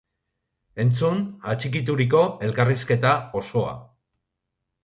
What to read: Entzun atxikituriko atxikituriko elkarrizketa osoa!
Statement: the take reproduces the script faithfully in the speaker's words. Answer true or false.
false